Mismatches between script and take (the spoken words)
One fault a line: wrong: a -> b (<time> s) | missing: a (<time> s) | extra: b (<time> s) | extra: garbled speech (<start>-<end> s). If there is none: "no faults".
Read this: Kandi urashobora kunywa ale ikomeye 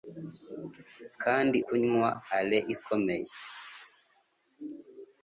missing: urashobora (1.6 s)